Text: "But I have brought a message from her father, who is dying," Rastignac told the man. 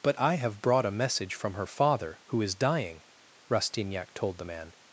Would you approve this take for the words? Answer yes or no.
yes